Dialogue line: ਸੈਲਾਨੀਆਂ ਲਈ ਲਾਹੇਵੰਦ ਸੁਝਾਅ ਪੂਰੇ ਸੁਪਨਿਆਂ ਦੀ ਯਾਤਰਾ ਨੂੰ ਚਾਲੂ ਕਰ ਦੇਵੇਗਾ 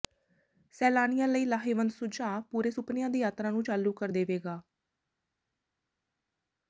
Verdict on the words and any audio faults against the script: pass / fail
pass